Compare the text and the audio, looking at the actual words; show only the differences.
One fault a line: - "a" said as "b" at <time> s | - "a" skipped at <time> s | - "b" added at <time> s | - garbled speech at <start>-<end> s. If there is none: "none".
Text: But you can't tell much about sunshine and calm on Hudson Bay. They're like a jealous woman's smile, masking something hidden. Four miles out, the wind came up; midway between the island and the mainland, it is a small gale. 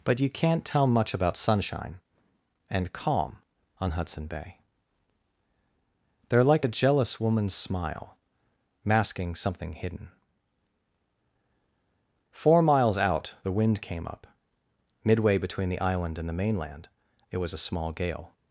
- "is" said as "was" at 17.4 s